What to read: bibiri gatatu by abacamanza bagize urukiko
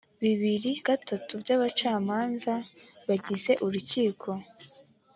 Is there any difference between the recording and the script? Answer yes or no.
no